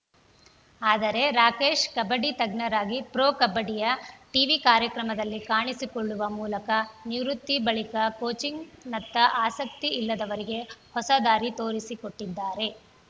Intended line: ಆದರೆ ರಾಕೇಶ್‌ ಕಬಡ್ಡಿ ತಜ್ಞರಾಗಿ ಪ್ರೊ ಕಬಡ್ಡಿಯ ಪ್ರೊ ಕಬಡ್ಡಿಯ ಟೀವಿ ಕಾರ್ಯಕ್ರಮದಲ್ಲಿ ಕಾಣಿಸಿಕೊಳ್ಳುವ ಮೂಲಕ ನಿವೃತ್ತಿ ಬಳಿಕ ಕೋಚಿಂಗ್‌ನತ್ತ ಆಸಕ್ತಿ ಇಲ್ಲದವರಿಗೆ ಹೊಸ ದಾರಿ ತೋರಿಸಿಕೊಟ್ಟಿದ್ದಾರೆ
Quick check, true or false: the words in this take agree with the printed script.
false